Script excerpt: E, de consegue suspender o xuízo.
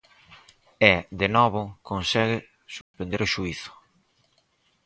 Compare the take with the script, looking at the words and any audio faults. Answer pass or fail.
fail